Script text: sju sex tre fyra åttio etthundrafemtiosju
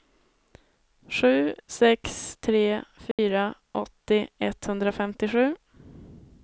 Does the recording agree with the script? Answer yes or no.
yes